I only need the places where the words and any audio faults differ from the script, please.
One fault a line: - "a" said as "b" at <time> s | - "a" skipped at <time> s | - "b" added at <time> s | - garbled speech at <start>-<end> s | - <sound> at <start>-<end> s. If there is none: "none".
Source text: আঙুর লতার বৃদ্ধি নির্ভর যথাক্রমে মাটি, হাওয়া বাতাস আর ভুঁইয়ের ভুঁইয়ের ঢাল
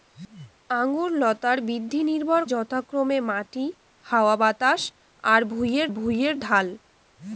none